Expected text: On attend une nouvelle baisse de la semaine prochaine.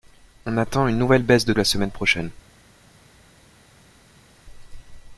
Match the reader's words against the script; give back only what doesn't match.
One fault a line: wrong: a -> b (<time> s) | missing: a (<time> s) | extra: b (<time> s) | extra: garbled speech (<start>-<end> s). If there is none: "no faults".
no faults